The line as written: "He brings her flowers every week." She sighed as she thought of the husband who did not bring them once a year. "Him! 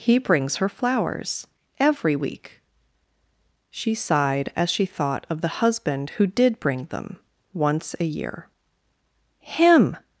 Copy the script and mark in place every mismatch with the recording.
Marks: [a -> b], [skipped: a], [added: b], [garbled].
"He brings her flowers every week." She sighed as she thought of the husband who did [skipped: not] bring them once a year. "Him!